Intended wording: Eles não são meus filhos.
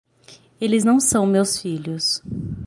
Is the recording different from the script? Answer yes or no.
no